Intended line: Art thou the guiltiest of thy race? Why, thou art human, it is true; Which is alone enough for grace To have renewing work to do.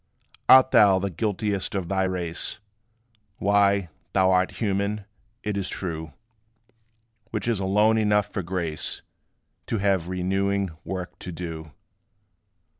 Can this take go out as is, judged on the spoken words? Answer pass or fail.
pass